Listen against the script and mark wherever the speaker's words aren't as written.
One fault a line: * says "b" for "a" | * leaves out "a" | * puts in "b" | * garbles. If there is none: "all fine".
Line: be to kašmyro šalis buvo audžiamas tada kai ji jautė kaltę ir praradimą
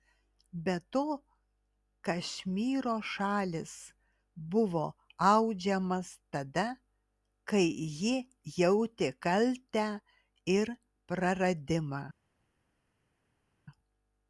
all fine